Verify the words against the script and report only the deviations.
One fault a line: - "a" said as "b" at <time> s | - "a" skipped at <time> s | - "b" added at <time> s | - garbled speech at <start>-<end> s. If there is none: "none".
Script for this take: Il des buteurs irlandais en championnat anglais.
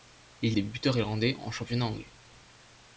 none